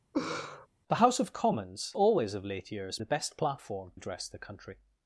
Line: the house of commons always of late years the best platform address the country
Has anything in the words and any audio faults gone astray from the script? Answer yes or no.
yes